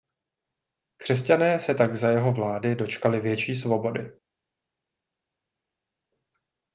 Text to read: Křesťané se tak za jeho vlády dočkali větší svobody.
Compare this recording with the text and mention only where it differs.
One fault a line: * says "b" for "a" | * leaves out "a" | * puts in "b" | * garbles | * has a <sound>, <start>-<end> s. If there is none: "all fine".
all fine